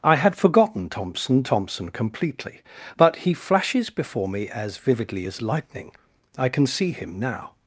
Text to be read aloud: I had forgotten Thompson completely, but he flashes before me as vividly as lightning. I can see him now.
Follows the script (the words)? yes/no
no